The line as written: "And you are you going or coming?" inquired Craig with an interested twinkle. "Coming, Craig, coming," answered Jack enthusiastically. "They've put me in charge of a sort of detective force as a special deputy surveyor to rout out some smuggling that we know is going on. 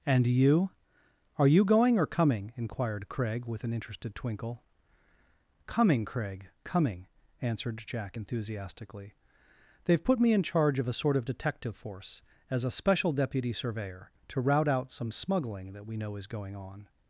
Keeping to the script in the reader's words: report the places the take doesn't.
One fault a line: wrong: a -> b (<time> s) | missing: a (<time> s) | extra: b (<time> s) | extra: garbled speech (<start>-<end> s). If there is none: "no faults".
no faults